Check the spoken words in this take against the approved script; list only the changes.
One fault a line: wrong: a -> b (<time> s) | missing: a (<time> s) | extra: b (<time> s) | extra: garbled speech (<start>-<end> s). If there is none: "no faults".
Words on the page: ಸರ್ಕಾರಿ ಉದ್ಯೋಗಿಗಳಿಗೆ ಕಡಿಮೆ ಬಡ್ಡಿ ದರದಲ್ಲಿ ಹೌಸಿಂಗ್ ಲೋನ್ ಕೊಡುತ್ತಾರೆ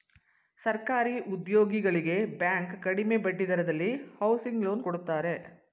extra: ಬ್ಯಾಂಕ್ (2.4 s)